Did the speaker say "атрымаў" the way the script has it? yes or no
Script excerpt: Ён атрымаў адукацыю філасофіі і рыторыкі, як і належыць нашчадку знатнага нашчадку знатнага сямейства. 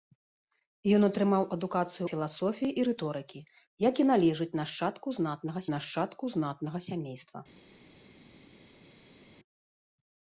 yes